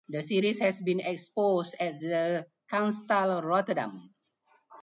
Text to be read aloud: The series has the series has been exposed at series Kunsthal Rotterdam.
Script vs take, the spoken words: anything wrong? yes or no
yes